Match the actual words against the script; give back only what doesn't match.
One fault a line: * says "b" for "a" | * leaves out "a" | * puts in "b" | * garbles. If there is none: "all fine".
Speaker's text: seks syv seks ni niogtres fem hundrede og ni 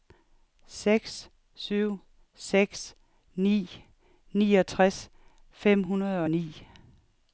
all fine